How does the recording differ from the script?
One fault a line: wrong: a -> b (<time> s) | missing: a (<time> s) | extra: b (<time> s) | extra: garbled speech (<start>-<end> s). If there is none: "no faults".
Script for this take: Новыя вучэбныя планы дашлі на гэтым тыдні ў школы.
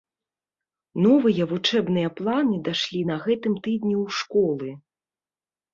no faults